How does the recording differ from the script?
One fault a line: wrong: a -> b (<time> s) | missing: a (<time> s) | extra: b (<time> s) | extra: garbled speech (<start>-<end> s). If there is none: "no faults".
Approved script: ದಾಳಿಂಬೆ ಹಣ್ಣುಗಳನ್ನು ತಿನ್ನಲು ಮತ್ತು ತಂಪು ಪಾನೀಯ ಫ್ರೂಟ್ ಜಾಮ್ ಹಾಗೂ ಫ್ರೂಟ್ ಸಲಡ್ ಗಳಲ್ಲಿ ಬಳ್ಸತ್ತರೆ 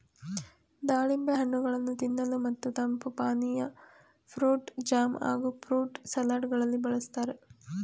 no faults